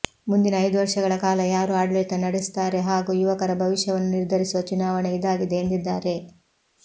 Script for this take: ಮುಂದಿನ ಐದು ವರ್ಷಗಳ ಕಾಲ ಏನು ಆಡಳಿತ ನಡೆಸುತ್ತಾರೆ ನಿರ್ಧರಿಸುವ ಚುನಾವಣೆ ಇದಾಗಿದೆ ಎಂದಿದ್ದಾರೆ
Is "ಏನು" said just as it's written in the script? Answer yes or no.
no